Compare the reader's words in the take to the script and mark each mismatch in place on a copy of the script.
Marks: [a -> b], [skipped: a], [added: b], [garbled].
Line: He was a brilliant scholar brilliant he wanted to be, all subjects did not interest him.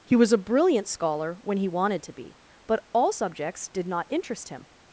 He was a brilliant scholar [brilliant -> when] he wanted to be, [added: but] all subjects did not interest him.